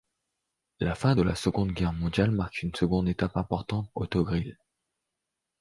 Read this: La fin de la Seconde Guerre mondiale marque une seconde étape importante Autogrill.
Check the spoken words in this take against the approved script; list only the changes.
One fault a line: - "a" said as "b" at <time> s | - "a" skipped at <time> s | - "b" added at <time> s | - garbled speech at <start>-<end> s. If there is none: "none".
none